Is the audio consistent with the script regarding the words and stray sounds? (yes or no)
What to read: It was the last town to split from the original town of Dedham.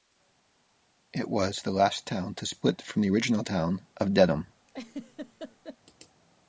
no